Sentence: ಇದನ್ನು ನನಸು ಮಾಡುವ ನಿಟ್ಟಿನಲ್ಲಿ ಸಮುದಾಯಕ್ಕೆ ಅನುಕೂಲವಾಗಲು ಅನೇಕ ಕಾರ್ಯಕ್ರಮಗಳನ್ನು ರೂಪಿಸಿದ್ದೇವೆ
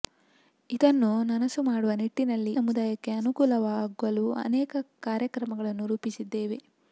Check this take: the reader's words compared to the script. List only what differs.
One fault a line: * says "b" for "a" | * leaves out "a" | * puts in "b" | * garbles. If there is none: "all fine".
all fine